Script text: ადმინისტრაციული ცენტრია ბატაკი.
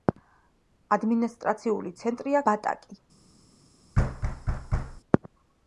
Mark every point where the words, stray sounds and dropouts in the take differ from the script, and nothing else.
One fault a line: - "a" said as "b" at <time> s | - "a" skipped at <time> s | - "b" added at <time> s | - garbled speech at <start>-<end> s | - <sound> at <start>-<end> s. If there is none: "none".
- thud at 3.9-5.0 s